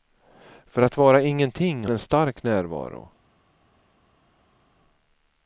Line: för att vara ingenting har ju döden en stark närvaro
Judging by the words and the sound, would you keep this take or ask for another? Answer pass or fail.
fail